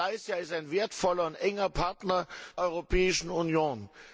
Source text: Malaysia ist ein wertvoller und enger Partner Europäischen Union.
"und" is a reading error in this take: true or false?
false